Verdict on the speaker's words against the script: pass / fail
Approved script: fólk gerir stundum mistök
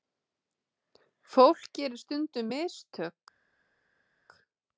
pass